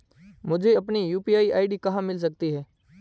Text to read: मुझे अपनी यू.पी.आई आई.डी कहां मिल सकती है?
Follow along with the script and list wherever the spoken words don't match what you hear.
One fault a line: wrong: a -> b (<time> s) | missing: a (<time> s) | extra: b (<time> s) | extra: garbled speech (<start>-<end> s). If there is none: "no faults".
no faults